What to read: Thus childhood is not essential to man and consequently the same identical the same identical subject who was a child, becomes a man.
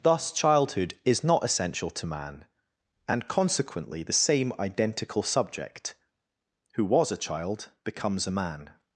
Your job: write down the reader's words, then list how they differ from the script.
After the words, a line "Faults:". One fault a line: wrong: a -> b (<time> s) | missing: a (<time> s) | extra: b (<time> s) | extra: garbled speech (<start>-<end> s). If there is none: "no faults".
Thus childhood is not essential to man and consequently the same identical subject who was a child, becomes a man.
Faults:
missing: the same identical (5.2 s)